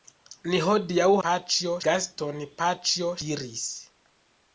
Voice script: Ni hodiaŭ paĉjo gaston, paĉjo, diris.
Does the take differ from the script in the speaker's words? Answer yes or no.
no